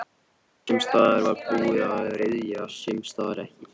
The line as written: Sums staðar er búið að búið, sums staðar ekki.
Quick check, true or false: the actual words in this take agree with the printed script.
false